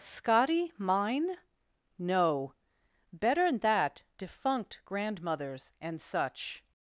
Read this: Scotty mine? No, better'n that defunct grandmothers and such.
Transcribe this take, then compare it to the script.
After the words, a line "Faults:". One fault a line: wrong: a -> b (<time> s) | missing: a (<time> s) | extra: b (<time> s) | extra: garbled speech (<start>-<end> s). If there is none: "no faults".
Scotty mine? No, better'n that defunct grandmothers and such.
Faults:
no faults